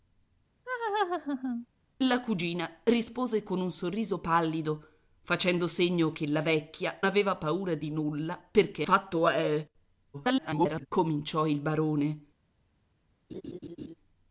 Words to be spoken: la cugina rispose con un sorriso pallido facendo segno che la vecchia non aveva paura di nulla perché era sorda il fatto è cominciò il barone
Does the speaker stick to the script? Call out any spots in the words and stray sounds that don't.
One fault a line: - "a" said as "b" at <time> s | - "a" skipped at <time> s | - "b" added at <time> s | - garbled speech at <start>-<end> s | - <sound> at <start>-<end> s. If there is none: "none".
- laugh at 0.6-1.7 s
- "non" skipped at 7.0 s
- "era sorda il" skipped at 8.8 s
- garbled speech at 10.1-10.9 s
- laugh at 13.3-13.9 s